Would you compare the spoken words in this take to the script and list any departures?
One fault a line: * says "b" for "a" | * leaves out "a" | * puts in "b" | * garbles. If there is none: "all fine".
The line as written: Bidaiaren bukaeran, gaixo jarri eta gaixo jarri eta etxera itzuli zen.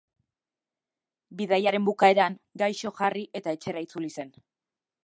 * leaves out "gaixo jarri eta"